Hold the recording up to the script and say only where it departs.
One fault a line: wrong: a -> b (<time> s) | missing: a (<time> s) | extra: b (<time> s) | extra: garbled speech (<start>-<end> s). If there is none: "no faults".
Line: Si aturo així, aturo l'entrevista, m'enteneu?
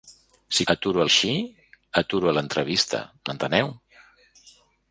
no faults